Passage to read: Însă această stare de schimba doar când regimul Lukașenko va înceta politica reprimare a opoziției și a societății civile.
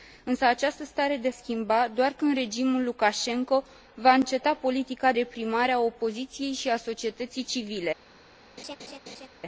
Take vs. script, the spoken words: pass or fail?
pass